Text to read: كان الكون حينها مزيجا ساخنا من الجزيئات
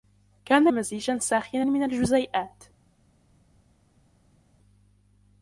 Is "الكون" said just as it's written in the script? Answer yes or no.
no